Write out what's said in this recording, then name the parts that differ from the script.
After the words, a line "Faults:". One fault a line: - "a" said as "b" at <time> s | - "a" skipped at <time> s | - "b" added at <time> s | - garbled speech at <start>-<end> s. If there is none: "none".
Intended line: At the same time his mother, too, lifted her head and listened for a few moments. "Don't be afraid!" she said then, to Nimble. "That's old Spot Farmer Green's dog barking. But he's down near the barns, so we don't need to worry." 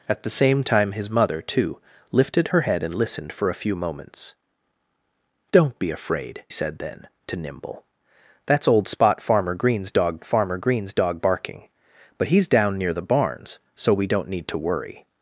At the same time his mother, too, lifted her head and listened for a few moments. "Don't be afraid!" said then, to Nimble. "That's old Spot Farmer Green's dog Farmer Green's dog barking. But he's down near the barns, so we don't need to worry."
Faults:
- "she" skipped at 6.4 s
- "Farmer Green's dog" added at 10.2 s